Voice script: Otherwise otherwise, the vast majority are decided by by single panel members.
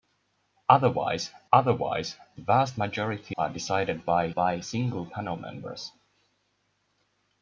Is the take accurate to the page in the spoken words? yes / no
yes